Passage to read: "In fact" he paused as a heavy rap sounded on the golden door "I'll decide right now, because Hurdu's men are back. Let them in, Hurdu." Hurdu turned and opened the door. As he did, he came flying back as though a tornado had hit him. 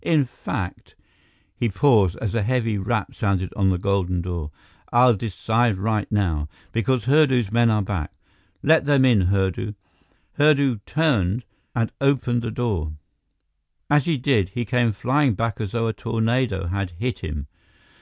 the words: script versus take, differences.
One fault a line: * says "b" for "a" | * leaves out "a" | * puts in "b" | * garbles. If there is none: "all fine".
all fine